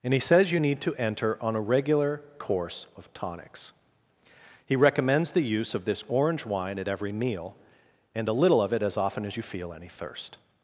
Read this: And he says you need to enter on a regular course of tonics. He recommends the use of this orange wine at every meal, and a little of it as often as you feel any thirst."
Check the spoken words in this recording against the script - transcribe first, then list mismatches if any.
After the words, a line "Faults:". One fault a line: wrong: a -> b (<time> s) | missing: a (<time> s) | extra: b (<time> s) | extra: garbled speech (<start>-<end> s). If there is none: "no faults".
And he says you need to enter on a regular course of tonics. He recommends the use of this orange wine at every meal, and a little of it as often as you feel any thirst."
Faults:
no faults